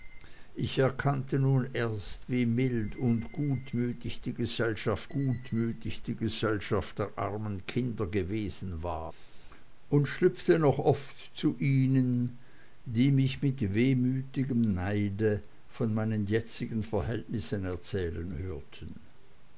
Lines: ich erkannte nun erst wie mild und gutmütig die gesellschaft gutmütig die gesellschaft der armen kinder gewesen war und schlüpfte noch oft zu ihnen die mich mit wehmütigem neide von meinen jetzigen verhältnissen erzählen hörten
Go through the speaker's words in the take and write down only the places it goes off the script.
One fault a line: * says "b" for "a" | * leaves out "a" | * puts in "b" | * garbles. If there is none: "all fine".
all fine